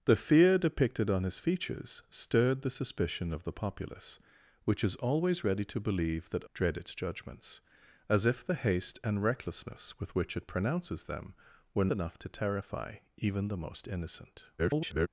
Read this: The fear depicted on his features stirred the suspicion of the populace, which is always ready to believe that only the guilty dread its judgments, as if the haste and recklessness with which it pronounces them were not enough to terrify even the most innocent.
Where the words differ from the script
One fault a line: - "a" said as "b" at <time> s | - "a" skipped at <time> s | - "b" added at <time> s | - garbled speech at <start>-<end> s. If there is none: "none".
- "only the guilty" skipped at 6.5 s
- "not" skipped at 11.9 s
- garbled speech at 14.6-15.1 s